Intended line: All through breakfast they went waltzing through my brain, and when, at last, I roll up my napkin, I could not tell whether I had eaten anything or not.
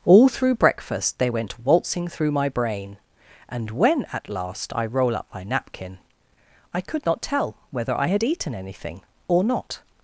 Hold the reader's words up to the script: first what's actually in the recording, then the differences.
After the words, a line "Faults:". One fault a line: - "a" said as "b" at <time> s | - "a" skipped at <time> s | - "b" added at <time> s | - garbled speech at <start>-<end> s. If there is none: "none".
All through breakfast they went waltzing through my brain, and when, at last, I roll up my napkin, I could not tell whether I had eaten anything or not.
Faults:
none